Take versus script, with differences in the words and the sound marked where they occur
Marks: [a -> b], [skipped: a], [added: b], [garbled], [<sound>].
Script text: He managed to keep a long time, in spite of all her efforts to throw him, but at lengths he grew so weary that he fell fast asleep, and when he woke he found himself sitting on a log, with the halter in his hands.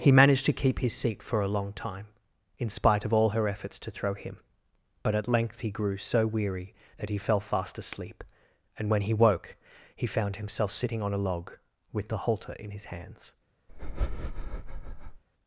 He managed to keep [added: his seat for] a long time, in spite of all her efforts to throw him, but at [lengths -> length] he grew so weary that he fell fast asleep, and when he woke he found himself sitting on a log, with the halter in his hands. [breath]